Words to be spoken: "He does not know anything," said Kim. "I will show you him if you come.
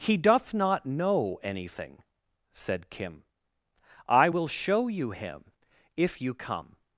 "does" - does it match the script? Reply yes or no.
no